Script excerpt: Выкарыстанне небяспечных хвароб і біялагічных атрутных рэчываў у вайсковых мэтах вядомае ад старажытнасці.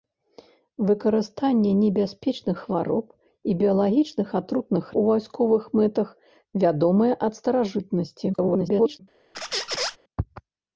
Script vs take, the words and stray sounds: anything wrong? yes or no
yes